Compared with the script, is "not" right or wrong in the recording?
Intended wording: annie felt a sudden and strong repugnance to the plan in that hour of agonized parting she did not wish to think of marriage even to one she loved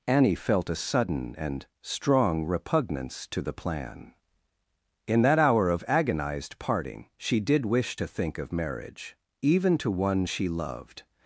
wrong